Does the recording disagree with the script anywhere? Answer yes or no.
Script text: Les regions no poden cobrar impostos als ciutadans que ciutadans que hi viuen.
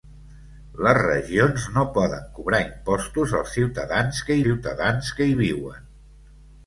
no